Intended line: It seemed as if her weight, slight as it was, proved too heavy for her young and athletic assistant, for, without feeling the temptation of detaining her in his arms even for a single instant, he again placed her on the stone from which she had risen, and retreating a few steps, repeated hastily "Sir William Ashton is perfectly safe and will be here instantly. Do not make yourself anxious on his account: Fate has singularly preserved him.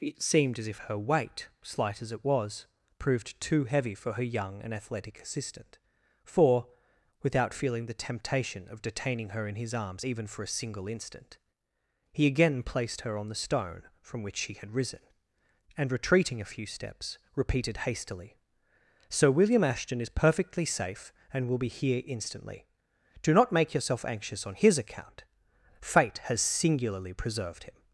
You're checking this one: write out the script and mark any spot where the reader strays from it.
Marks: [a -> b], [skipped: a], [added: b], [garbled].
It seemed as if her weight, slight as it was, proved too heavy for her young and athletic assistant, for, without feeling the temptation of detaining her in his arms even for a single instant, he again placed her on the stone from which she had risen, and retreating a few steps, repeated hastily "Sir William Ashton is perfectly safe and will be here instantly. Do not make yourself anxious on his account: Fate has singularly preserved him.